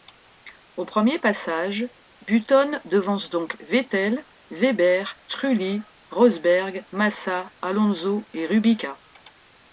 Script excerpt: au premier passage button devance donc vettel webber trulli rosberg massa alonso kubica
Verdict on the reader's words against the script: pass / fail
fail